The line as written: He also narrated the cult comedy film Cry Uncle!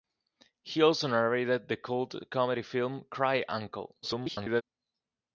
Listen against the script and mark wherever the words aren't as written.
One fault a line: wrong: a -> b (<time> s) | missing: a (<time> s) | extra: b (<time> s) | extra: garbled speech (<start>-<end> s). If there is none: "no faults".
extra: garbled speech (4.0-4.6 s)